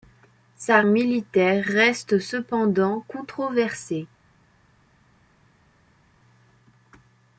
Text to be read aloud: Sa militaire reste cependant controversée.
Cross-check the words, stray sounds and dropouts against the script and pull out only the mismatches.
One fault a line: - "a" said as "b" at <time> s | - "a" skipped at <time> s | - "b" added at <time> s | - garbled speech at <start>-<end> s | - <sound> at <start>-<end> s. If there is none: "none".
none